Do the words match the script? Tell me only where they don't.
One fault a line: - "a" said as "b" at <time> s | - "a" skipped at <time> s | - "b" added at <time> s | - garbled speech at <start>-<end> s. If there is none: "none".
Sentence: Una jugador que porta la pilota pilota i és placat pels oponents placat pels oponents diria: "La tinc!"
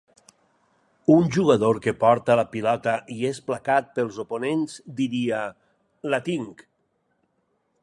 - "Una" said as "Un" at 1.1 s
- "pilota" skipped at 3.0 s
- "placat pels oponents" skipped at 4.8 s